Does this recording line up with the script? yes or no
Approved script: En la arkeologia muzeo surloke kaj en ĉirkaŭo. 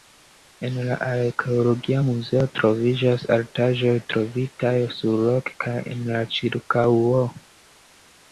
no